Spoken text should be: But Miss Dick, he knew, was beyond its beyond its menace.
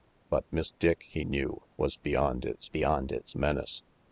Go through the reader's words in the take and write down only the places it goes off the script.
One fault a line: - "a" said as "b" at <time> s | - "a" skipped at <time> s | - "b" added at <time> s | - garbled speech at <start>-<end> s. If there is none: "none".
none